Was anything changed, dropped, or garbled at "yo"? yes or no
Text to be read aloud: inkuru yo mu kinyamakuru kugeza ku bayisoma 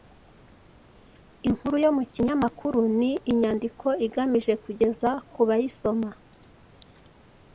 no